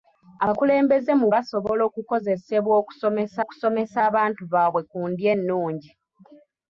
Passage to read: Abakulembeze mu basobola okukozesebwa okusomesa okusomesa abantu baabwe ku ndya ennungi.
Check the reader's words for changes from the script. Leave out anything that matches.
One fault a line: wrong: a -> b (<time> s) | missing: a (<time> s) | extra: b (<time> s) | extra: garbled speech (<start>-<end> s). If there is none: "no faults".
no faults